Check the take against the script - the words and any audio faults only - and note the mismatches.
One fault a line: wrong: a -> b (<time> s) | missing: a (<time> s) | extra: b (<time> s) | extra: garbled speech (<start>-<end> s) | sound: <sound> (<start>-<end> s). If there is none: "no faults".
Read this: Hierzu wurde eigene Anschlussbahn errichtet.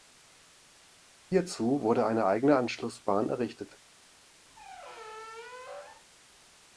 extra: eine (2.1 s)
sound: squeak (4.5-6.1 s)